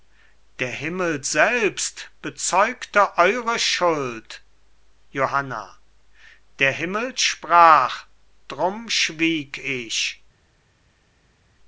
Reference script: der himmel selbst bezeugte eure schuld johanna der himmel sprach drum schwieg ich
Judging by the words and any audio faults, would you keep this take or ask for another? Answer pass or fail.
pass